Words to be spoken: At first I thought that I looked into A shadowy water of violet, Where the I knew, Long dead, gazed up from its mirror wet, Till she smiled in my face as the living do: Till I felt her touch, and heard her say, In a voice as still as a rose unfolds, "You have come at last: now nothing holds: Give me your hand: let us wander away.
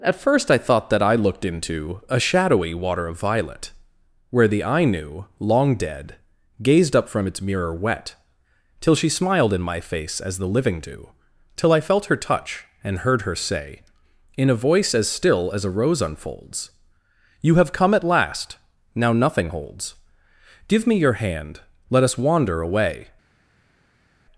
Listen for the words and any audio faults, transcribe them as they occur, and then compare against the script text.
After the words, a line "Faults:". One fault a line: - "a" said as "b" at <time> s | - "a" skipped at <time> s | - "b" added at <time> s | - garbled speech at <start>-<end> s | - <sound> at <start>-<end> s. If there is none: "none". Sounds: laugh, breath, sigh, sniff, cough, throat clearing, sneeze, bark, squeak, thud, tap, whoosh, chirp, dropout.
At first I thought that I looked into A shadowy water of violet, Where the I knew, Long dead, gazed up from its mirror wet, Till she smiled in my face as the living do: Till I felt her touch, and heard her say, In a voice as still as a rose unfolds, "You have come at last: now nothing holds: Give me your hand: let us wander away.
Faults:
none